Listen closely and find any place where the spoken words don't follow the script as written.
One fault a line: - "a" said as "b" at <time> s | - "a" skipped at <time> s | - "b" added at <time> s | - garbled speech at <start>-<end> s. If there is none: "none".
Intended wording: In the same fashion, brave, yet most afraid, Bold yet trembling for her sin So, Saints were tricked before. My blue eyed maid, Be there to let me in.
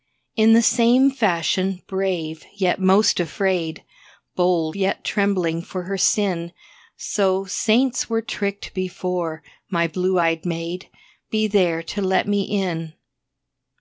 none